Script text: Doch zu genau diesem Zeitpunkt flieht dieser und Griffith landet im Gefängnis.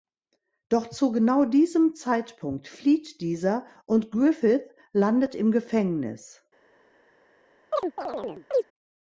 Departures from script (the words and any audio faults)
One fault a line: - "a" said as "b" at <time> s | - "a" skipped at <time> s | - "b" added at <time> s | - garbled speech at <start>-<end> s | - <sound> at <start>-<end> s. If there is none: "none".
- chirp at 7.7-8.6 s